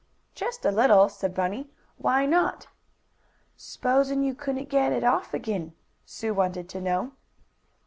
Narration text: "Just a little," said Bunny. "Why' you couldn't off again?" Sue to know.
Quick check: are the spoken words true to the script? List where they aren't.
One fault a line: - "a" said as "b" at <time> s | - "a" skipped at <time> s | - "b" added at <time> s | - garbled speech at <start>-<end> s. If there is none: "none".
- "not S'posin" added at 2.2 s
- "get it" added at 4.7 s
- "wanted" added at 6.4 s